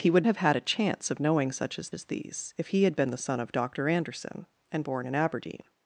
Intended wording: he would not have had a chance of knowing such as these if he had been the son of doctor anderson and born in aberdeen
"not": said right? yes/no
no